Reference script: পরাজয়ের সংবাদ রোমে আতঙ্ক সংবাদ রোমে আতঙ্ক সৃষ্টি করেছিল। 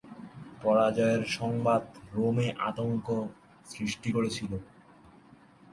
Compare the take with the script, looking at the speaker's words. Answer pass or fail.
fail